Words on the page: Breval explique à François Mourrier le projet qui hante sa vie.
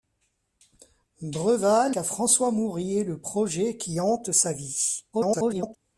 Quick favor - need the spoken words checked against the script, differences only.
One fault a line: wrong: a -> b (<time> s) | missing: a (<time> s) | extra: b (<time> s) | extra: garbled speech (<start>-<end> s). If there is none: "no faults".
missing: explique (1.9 s)
extra: garbled speech (5.1-5.8 s)